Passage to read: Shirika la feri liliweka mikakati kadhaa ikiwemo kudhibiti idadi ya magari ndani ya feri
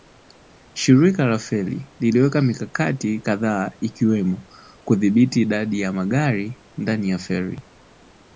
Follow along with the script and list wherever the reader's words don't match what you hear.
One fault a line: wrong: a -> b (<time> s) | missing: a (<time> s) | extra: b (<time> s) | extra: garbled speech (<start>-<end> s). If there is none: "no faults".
no faults